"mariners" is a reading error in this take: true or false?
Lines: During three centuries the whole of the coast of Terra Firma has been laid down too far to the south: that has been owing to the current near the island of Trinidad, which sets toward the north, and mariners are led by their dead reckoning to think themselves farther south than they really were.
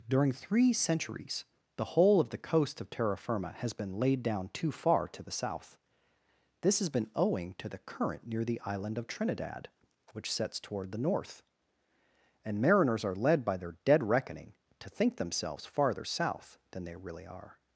false